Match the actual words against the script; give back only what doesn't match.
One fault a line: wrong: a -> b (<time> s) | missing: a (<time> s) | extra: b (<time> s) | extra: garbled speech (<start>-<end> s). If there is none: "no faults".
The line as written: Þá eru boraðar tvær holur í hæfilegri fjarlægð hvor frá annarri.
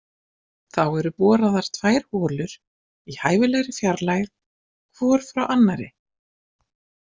no faults